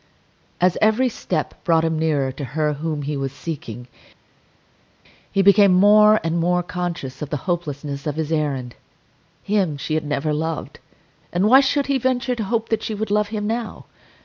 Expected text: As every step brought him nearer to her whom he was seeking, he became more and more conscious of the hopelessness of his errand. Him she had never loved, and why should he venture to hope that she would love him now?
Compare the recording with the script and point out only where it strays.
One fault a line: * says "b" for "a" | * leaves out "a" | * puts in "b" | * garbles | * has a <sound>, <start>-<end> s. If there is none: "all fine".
all fine